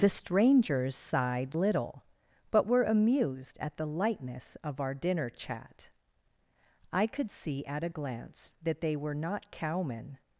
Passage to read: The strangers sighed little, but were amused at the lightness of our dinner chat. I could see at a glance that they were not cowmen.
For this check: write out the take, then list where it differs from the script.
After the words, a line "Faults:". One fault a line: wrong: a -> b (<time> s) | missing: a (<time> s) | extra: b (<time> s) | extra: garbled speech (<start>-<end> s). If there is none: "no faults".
The strangers sighed little, but were amused at the lightness of our dinner chat. I could see at a glance that they were not cowmen.
Faults:
no faults